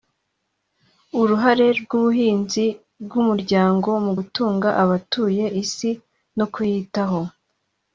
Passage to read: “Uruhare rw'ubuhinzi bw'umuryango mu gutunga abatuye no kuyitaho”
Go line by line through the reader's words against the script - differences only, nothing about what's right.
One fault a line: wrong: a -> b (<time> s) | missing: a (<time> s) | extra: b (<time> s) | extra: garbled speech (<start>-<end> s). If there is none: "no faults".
extra: isi (5.6 s)